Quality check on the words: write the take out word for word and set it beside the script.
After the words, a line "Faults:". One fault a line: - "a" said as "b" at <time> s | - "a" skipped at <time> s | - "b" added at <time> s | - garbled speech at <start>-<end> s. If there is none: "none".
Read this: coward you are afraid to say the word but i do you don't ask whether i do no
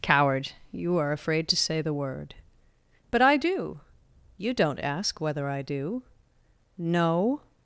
coward you are afraid to say the word but i do you don't ask whether i do no
Faults:
none